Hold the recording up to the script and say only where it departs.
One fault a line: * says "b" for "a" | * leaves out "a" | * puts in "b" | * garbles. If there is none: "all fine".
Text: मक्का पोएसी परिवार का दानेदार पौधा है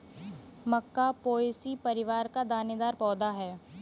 all fine